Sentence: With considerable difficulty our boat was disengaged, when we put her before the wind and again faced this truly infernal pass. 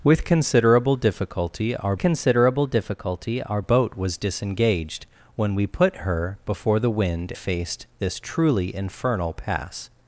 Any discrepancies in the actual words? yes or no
yes